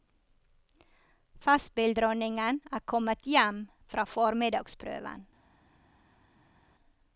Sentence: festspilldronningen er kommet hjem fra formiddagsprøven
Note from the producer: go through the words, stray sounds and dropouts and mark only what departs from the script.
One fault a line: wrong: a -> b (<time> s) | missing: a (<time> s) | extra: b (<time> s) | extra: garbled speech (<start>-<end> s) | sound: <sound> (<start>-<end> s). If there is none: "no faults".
no faults